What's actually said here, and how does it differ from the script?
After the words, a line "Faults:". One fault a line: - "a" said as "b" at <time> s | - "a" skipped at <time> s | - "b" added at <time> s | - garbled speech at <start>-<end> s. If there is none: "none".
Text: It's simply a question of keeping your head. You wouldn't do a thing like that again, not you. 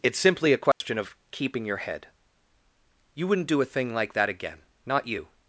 It's simply a question of keeping your head. You wouldn't do a thing like that again, not you.
Faults:
none